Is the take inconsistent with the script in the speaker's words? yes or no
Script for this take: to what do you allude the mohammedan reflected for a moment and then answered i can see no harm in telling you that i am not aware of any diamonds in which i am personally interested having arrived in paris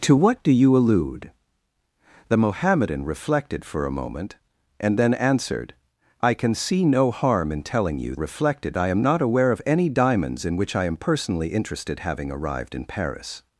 yes